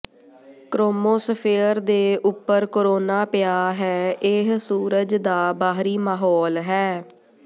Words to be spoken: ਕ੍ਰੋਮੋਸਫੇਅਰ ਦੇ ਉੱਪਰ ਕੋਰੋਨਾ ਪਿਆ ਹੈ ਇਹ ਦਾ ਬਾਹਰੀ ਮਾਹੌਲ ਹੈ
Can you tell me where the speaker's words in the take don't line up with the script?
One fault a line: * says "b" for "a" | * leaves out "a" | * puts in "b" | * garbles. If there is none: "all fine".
* puts in "ਸੂਰਜ"